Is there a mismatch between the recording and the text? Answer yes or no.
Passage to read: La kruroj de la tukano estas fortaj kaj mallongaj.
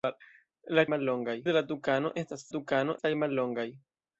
yes